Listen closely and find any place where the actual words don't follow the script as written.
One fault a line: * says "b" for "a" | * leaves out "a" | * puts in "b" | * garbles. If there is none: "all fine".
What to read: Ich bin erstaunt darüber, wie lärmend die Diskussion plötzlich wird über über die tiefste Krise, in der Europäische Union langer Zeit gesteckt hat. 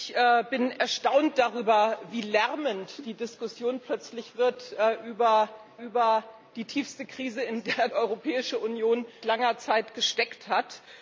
all fine